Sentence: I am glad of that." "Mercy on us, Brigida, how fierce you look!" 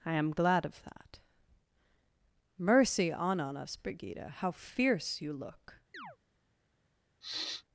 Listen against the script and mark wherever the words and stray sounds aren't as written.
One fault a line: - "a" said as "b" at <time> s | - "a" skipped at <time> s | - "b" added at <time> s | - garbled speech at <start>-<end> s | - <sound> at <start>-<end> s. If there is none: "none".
- "on" added at 3.4 s
- chirp at 5.9-6.2 s
- sniff at 7.2-7.6 s